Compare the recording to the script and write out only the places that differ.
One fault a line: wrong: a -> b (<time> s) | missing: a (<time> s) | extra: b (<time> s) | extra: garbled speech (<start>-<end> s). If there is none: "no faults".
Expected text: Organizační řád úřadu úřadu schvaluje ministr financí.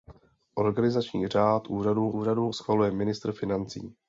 no faults